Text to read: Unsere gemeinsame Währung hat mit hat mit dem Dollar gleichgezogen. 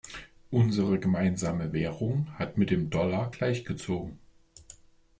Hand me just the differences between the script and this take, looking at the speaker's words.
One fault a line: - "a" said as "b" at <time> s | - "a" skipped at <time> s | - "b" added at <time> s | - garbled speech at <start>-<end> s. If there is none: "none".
- "hat mit" skipped at 2.7 s